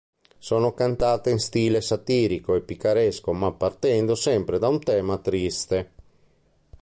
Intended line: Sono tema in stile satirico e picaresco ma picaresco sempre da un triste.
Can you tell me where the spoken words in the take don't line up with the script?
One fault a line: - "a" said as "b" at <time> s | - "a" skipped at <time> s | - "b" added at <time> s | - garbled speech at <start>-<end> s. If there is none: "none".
- "tema" said as "cantate" at 0.7 s
- "picaresco" said as "partendo" at 3.5 s
- "tema" added at 4.8 s